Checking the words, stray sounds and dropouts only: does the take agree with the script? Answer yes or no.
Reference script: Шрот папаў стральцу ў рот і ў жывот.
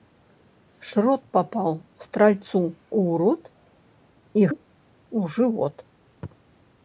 yes